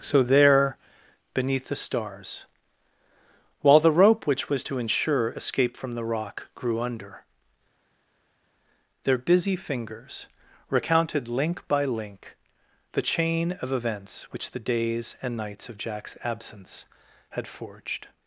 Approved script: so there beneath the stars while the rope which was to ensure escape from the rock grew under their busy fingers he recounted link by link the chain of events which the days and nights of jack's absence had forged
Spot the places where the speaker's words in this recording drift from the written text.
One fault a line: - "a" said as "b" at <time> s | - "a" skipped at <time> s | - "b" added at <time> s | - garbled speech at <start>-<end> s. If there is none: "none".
- "he" skipped at 10.3 s